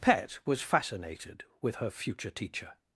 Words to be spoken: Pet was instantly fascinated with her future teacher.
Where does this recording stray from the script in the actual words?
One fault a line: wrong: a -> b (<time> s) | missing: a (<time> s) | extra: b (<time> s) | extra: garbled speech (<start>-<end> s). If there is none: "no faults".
missing: instantly (0.6 s)